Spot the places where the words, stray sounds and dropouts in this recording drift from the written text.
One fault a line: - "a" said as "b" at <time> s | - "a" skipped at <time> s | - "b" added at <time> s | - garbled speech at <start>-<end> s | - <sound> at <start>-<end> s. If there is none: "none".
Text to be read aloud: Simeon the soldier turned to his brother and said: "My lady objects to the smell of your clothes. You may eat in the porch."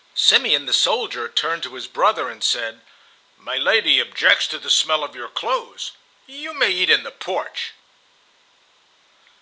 none